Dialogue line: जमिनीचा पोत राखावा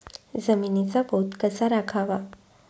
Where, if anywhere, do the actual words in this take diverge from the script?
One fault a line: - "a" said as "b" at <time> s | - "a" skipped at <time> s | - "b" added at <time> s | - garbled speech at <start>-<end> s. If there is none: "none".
- "कसा" added at 1.4 s